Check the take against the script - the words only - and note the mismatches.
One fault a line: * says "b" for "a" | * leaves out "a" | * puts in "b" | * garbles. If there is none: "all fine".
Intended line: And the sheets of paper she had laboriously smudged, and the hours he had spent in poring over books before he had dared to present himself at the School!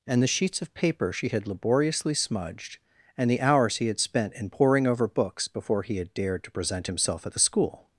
all fine